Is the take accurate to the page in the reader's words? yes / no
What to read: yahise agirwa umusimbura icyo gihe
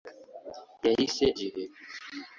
no